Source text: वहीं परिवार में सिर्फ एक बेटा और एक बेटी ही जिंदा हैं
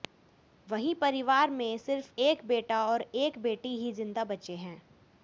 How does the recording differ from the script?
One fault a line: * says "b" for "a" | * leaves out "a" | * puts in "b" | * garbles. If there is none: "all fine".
* puts in "बचे"